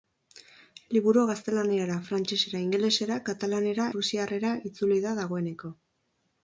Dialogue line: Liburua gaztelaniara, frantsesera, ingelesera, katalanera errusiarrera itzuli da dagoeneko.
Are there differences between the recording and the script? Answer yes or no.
no